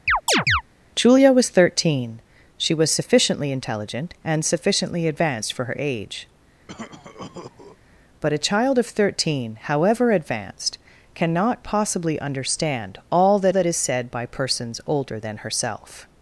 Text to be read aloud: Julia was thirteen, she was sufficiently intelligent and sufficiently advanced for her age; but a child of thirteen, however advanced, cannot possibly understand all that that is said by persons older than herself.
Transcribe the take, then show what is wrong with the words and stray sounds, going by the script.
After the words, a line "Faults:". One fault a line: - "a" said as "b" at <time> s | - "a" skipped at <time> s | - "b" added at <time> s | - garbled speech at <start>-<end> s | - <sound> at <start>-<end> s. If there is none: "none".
Julia was thirteen, she was sufficiently intelligent and sufficiently advanced for her age; but a child of thirteen, however advanced, cannot possibly understand all that that is said by persons older than herself.
Faults:
- chirp at 0.1-0.6 s
- cough at 6.7-7.8 s